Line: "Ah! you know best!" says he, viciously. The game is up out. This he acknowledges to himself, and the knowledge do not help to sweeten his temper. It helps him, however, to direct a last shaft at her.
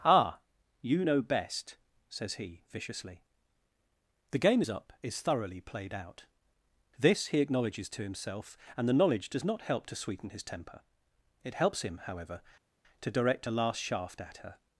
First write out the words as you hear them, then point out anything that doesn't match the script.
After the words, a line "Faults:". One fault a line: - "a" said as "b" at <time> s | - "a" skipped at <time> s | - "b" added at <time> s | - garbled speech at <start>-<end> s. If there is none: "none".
"Ah! you know best!" says he, viciously. The game is up is thoroughly played out. This he acknowledges to himself, and the knowledge does not help to sweeten his temper. It helps him, however, to direct a last shaft at her.
Faults:
- "is thoroughly played" added at 5.0 s
- "do" said as "does" at 9.3 s